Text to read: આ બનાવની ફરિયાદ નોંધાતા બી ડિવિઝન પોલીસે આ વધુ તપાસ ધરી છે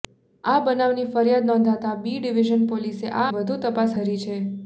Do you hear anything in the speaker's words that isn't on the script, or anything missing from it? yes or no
no